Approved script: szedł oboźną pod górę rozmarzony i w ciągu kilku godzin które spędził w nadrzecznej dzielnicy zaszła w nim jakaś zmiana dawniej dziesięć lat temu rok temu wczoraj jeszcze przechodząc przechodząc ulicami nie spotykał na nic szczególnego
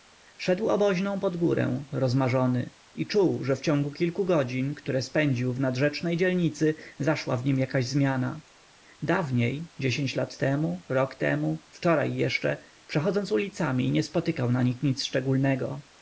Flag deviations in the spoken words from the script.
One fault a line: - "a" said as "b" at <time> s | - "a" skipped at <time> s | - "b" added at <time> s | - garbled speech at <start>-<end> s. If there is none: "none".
- "czuł że" added at 3.1 s
- "przechodząc" skipped at 13.3 s
- "nich" added at 14.6 s